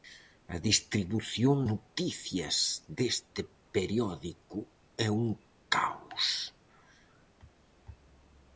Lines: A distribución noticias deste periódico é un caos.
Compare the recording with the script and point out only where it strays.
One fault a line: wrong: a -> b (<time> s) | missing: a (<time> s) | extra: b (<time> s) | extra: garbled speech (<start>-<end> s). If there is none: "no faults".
no faults